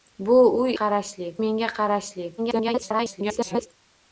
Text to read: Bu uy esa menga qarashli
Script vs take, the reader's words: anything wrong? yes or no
yes